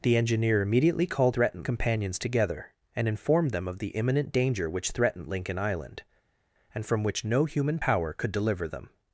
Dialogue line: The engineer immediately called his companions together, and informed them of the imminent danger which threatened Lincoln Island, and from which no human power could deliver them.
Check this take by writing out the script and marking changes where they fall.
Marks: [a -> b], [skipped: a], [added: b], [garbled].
The engineer immediately called [his -> threatened] companions together, and informed them of the imminent danger which threatened Lincoln Island, and from which no human power could deliver them.